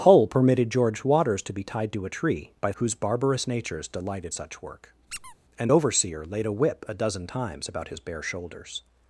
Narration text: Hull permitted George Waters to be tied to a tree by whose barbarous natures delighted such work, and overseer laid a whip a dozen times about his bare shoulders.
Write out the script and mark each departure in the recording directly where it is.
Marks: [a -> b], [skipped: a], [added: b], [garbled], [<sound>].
Hull permitted George Waters to be tied to a tree by whose barbarous natures delighted such work, [squeak] and overseer laid a whip a dozen times about his bare shoulders.